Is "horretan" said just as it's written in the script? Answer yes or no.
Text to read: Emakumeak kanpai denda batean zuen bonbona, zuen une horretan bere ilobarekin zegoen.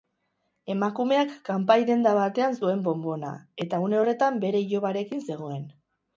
yes